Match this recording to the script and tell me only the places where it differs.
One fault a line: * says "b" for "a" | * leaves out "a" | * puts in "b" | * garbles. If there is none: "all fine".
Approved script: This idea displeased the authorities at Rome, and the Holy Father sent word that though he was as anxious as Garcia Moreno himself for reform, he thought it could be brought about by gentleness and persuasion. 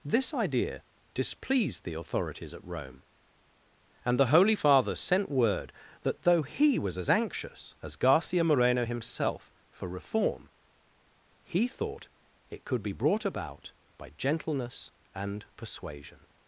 all fine